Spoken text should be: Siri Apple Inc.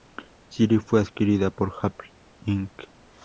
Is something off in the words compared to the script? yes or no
yes